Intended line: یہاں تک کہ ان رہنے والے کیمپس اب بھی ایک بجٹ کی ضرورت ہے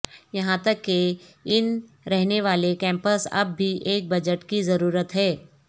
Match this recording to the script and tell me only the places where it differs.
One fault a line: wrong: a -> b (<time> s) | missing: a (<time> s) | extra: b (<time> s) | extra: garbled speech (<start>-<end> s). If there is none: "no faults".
no faults